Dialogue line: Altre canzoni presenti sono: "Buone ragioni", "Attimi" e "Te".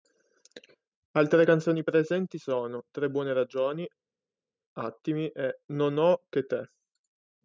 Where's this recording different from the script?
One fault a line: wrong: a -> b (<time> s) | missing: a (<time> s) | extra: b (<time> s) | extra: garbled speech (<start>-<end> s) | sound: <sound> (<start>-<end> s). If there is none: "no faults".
extra: Tre (2.9 s)
extra: Non ho che (5.7 s)